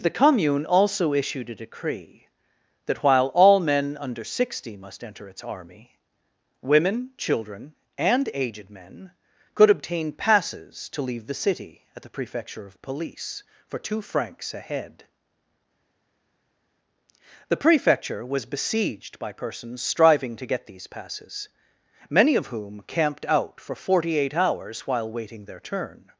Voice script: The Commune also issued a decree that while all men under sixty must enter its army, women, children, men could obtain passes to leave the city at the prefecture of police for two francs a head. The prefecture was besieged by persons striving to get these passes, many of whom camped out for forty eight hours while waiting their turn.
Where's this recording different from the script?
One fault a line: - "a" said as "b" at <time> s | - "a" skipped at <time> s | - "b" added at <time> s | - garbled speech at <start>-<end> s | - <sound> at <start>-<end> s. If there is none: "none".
- "and aged" added at 8.0 s